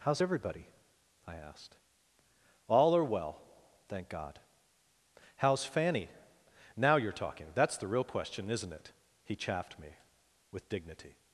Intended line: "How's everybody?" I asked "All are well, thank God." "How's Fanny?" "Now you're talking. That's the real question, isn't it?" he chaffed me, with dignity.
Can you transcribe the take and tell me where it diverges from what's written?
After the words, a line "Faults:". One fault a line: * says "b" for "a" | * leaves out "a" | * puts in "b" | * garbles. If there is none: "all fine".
"How's everybody?" I asked "All are well, thank God." "How's Fanny?" "Now you're talking. That's the real question, isn't it?" he chaffed me, with dignity.
Faults:
all fine